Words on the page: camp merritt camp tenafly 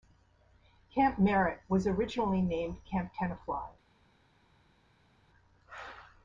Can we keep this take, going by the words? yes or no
no